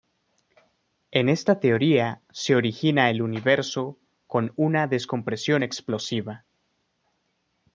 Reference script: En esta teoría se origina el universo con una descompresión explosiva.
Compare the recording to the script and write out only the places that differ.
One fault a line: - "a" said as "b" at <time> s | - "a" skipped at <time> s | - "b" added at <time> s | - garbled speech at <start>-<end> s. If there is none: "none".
none